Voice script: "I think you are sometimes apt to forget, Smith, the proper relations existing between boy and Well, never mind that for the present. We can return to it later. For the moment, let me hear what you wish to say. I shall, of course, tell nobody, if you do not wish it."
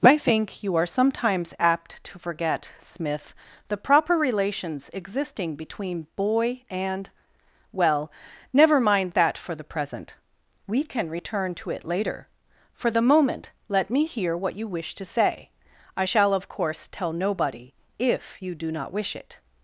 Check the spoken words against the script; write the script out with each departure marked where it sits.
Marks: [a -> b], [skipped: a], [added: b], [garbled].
"I think you are sometimes apt to forget, Smith, the proper relations existing between boy and Well, never mind that for the present. We can return to it later. For the moment, let me hear what you wish to say. I shall, of course, tell nobody, if you do not wish it."